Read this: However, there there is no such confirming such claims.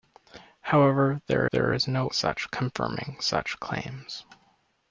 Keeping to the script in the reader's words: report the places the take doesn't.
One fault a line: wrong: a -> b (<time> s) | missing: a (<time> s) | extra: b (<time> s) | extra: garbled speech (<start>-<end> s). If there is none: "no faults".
no faults